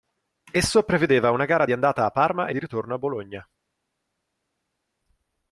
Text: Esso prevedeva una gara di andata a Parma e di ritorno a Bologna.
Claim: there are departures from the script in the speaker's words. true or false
false